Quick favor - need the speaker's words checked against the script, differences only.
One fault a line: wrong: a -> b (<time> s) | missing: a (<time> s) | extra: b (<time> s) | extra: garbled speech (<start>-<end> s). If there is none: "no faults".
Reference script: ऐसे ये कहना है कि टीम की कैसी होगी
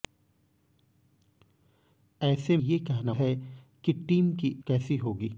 no faults